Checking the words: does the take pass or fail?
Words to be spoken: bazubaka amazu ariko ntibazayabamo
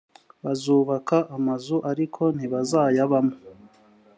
pass